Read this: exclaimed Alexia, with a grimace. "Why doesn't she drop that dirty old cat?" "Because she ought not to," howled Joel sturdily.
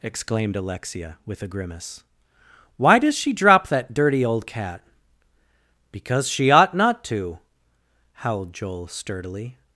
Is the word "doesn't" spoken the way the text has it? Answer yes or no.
no